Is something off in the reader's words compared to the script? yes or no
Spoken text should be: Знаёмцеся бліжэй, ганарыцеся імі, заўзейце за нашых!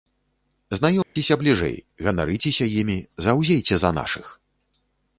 no